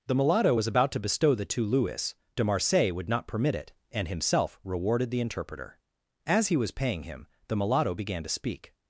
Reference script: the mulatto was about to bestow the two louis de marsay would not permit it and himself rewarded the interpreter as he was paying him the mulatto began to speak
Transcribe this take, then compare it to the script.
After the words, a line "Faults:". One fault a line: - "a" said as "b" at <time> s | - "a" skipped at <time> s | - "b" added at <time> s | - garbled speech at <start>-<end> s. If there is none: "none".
the mulatto was about to bestow the two louis de marsay would not permit it and himself rewarded the interpreter as he was paying him the mulatto began to speak
Faults:
none